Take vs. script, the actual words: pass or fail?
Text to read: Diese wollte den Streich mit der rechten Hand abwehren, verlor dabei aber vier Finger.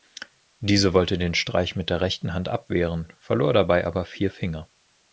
pass